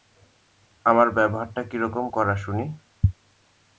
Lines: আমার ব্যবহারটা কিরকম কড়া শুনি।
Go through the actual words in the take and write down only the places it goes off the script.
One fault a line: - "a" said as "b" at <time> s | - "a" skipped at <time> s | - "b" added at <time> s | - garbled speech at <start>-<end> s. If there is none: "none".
none